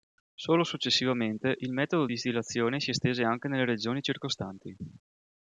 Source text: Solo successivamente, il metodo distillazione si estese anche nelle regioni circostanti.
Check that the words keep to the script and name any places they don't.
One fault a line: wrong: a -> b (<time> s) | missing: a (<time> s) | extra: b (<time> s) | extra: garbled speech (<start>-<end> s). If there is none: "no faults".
no faults